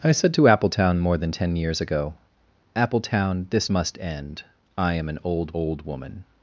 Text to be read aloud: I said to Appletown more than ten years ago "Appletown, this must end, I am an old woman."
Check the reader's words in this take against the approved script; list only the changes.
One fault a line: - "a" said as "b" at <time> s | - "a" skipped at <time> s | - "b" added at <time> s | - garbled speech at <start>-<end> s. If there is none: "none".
- "old" added at 5.5 s